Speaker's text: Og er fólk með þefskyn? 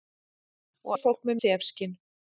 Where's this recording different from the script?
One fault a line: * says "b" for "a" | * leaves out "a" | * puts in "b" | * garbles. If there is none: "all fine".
all fine